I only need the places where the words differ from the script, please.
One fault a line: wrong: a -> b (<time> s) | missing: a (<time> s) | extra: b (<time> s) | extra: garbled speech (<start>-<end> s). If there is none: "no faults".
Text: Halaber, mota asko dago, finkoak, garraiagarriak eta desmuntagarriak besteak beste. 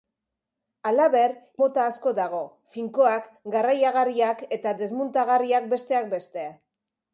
no faults